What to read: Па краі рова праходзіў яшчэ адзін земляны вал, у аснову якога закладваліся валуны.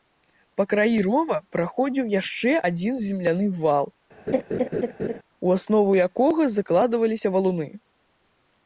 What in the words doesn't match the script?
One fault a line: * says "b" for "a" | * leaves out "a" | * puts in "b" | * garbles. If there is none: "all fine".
all fine